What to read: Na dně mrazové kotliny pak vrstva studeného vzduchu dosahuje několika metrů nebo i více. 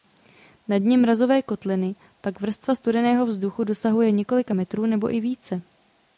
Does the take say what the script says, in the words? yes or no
yes